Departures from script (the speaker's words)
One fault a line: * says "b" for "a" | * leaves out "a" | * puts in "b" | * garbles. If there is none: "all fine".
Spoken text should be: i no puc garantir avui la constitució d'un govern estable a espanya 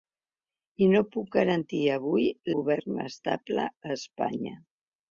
* leaves out "la constitució d'un"